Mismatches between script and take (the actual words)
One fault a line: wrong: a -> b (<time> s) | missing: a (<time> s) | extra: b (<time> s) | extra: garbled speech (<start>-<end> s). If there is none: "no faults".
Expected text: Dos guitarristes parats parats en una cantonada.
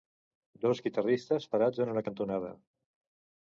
missing: parats (1.9 s)